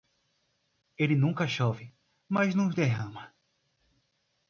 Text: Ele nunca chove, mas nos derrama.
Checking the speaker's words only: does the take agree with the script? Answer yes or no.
yes